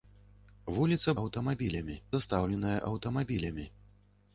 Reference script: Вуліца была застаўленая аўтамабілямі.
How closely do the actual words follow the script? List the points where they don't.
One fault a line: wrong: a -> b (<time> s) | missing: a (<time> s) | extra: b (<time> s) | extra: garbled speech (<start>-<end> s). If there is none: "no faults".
wrong: была -> аўтамабілямі (1.2 s)